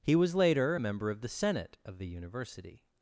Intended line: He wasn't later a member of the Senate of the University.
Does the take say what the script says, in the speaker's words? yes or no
no